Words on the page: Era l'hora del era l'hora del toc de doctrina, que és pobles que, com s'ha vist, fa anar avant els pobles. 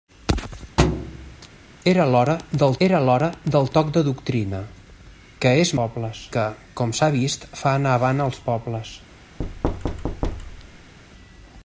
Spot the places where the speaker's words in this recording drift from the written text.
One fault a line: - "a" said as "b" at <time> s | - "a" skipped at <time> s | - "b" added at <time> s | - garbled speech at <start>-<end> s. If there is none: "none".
none